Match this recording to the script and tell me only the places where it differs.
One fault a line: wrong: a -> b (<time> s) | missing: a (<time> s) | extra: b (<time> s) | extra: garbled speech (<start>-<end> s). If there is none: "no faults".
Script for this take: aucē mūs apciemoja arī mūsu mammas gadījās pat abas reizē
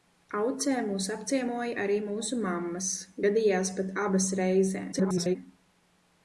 extra: garbled speech (4.9-5.4 s)